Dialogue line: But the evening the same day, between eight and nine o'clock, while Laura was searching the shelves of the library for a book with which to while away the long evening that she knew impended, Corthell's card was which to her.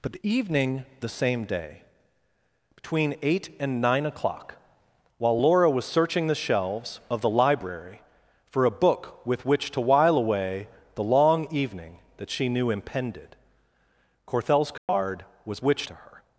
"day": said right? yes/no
yes